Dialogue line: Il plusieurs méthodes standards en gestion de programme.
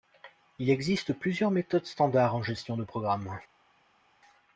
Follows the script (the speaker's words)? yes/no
no